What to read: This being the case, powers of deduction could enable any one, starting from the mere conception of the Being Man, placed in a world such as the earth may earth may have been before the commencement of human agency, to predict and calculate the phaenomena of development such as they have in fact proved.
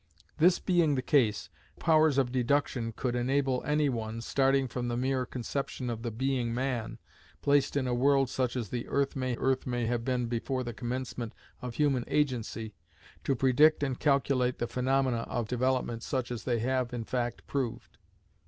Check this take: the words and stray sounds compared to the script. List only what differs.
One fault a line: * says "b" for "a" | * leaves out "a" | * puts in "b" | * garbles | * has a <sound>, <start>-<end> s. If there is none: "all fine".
all fine